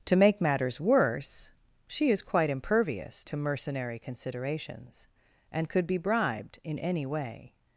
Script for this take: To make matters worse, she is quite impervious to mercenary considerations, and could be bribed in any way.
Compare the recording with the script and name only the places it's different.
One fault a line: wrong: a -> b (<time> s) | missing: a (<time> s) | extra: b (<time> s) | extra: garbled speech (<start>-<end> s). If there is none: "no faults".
no faults